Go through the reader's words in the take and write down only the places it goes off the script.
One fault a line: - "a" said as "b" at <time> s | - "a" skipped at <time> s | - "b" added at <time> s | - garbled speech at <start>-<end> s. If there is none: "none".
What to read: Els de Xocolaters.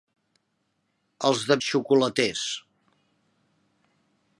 none